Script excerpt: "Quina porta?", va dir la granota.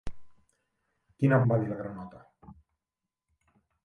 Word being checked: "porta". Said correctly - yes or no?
no